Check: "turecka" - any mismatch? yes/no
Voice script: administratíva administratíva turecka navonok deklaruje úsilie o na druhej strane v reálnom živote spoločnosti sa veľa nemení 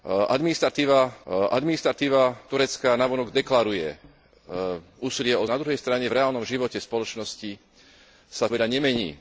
no